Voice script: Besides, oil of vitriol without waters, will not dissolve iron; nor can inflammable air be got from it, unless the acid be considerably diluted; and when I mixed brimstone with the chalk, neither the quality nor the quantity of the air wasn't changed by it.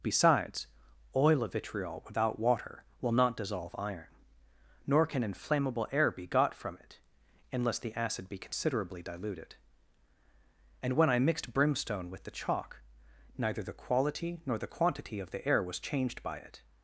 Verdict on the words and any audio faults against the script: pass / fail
fail